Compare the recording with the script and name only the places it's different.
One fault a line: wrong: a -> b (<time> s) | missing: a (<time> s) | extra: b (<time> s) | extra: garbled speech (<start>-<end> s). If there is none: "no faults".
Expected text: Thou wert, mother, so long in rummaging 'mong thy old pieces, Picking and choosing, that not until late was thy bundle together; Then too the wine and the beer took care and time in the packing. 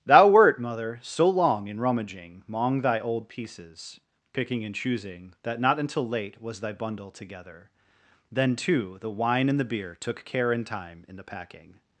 no faults